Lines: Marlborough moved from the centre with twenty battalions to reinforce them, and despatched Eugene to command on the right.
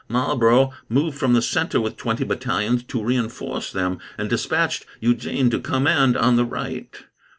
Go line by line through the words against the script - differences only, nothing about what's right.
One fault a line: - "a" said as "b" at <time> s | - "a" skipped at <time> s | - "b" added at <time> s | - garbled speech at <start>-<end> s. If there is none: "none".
none